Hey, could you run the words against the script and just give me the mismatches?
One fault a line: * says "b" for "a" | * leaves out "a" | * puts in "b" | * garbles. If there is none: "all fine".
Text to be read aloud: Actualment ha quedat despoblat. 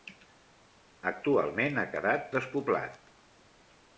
all fine